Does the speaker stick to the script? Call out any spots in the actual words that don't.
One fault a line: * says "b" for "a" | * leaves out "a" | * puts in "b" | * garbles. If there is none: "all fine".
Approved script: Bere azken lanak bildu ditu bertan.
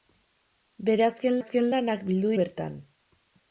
* puts in "azken"
* leaves out "ditu"